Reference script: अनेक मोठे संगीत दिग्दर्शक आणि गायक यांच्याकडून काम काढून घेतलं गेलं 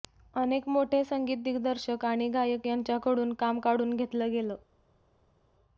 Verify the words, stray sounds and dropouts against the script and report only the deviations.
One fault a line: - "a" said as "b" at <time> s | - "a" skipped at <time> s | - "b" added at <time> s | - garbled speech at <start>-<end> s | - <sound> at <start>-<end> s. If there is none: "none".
none